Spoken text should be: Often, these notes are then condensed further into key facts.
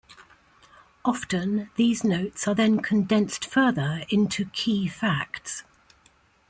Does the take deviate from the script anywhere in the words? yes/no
no